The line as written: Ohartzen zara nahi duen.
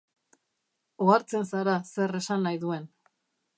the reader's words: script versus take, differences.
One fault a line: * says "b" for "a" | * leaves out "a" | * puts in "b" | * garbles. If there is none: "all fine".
* puts in "zer esan"